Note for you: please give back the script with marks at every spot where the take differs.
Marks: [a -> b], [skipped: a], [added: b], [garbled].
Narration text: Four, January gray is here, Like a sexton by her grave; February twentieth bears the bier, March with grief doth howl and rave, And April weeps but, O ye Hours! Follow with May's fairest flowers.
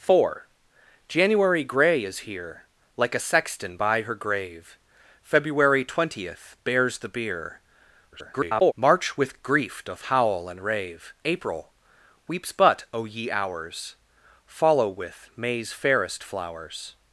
Four, January gray is here, Like a sexton by her grave; February twentieth bears the bier, [garbled] March with grief doth howl and rave, [skipped: And] April weeps but, O ye Hours! Follow with May's fairest flowers.